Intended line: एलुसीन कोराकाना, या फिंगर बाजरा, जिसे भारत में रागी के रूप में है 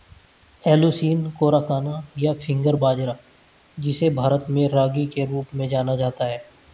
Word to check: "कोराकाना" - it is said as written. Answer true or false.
true